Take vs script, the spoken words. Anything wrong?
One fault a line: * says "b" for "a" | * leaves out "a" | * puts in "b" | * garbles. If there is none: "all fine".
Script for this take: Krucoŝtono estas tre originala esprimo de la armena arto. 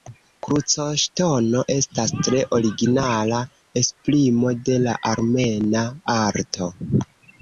all fine